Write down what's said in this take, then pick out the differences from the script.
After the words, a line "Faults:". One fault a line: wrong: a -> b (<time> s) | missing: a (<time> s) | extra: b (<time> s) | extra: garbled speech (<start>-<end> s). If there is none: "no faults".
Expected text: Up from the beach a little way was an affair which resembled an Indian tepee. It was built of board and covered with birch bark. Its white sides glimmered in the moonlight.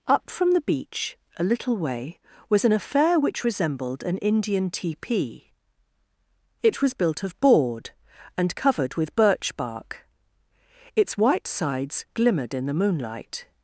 Up from the beach a little way was an affair which resembled an Indian tepee. It was built of board and covered with birch bark. Its white sides glimmered in the moonlight.
Faults:
no faults